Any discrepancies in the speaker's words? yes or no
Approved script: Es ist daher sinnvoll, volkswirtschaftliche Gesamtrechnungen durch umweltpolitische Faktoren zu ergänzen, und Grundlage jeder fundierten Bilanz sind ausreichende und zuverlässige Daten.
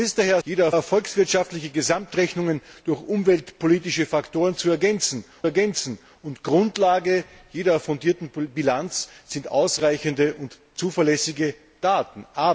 yes